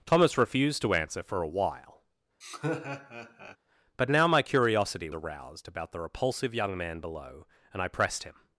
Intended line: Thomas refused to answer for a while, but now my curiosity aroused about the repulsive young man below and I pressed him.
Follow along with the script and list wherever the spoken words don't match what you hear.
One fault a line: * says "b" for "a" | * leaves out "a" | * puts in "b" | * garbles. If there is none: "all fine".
all fine